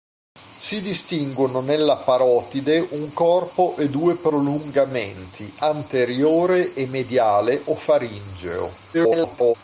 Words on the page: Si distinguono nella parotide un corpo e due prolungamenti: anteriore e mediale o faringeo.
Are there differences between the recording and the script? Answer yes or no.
yes